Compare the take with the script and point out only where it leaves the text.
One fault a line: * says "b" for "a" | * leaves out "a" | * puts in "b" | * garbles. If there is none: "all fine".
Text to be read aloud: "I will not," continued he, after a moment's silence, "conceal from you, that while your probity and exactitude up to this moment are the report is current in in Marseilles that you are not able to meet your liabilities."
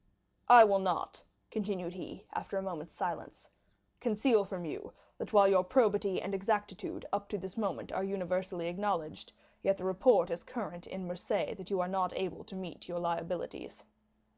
* puts in "universally acknowledged yet"
* leaves out "in"